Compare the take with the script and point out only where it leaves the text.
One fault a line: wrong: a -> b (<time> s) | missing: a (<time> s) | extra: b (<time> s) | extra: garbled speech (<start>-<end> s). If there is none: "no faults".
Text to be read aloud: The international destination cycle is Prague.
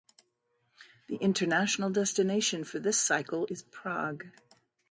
extra: for this (2.6 s)